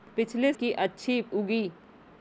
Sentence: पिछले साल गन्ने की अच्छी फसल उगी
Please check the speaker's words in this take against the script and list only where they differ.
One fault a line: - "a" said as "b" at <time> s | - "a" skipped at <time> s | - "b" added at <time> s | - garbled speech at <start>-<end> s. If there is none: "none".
- "साल गन्ने" skipped at 0.5 s
- "फसल" skipped at 1.2 s